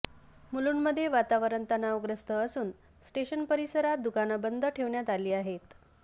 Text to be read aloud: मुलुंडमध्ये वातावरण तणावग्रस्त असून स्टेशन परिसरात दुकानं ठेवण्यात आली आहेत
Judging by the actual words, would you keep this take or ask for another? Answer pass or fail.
fail